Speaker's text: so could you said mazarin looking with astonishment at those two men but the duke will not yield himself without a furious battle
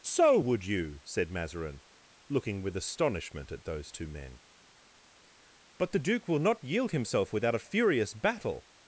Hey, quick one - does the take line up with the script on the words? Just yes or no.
no